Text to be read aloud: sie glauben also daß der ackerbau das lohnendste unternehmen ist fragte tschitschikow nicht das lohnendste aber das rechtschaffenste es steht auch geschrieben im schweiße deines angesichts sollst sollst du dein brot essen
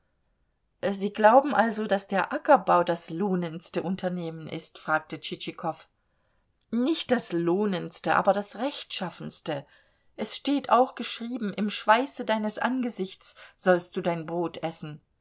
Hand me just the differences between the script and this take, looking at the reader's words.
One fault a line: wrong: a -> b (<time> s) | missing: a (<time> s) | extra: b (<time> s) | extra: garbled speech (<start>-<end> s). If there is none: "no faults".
missing: sollst (13.9 s)